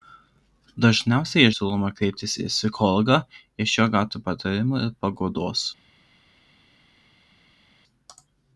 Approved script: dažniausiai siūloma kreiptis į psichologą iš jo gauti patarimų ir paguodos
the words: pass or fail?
pass